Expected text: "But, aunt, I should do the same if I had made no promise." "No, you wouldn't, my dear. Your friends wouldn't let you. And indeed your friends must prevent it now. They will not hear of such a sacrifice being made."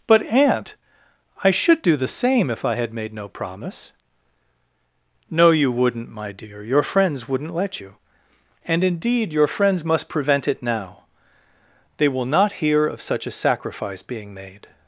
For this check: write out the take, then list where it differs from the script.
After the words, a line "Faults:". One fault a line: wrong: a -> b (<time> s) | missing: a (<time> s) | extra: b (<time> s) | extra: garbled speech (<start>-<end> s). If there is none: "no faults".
"But, aunt, I should do the same if I had made no promise." "No, you wouldn't, my dear. Your friends wouldn't let you. And indeed your friends must prevent it now. They will not hear of such a sacrifice being made."
Faults:
no faults